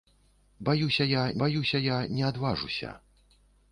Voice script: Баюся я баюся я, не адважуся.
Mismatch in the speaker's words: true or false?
false